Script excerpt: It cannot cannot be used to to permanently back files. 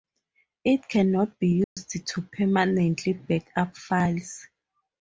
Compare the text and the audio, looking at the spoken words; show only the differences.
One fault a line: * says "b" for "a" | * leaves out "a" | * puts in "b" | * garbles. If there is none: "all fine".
* leaves out "cannot"
* leaves out "to"
* puts in "up"